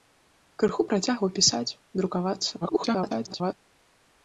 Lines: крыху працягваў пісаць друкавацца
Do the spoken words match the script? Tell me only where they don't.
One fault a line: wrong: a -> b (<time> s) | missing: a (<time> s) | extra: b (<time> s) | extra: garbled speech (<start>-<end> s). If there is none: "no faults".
extra: garbled speech (2.6-3.5 s)